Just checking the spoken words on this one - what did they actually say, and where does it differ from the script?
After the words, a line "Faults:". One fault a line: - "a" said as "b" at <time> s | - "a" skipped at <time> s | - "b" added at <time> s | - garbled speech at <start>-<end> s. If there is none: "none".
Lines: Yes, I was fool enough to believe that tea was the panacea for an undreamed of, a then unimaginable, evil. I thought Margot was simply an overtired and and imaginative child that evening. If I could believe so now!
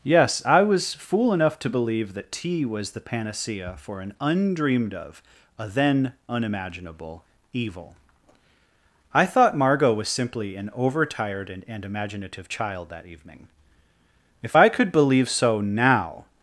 Yes, I was fool enough to believe that tea was the panacea for an undreamed of, a then unimaginable, evil. I thought Margot was simply an overtired and and imaginative child that evening. If I could believe so now!
Faults:
none